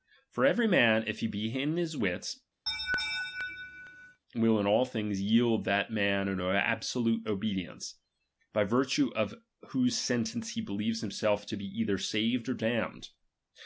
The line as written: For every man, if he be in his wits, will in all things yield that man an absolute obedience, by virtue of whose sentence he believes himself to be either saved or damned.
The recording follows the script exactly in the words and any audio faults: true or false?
false